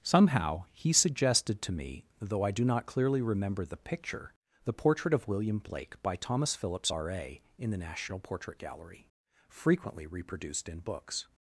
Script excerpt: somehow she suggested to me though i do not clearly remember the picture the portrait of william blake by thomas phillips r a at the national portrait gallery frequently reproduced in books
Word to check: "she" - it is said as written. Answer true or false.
false